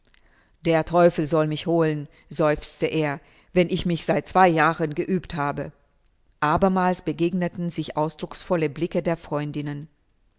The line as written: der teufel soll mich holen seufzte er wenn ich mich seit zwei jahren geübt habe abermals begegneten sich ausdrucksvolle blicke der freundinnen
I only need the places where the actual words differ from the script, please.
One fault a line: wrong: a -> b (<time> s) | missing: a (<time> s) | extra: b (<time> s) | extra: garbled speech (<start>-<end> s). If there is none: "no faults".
no faults